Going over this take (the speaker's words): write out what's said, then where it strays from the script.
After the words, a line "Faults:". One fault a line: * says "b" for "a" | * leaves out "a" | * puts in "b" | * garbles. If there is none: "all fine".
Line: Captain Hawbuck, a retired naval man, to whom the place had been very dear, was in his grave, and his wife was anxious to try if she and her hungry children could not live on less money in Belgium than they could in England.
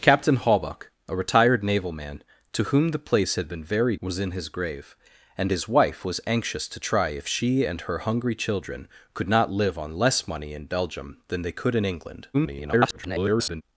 Captain Hawbuck, a retired naval man, to whom the place had been very was in his grave, and his wife was anxious to try if she and her hungry children could not live on less money in Belgium than they could in England. [garbled]
Faults:
* leaves out "dear"
* garbles